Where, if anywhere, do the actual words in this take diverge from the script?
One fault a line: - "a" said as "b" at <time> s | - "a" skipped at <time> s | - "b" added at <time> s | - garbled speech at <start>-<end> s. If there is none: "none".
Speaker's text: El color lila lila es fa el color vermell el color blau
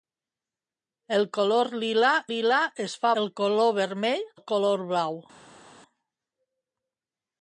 none